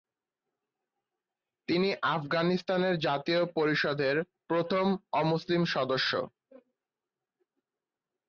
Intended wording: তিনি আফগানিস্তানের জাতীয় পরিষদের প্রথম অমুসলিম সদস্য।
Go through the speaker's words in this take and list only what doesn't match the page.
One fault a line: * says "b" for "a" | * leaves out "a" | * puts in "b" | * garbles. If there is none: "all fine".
all fine